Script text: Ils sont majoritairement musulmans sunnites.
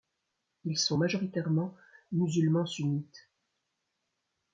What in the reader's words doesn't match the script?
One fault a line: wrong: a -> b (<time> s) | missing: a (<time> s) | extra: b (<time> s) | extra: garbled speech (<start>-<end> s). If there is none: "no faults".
no faults